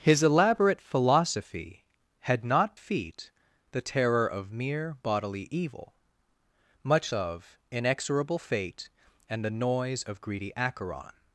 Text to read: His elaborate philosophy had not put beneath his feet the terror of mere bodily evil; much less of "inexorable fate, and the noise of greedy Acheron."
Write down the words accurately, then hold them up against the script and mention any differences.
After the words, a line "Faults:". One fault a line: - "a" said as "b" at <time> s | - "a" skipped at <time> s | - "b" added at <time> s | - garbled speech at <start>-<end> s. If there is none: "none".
His elaborate philosophy had not feet the terror of mere bodily evil; much of "inexorable fate, and the noise of greedy Acheron."
Faults:
- "put beneath his" skipped at 2.8 s
- "less" skipped at 7.1 s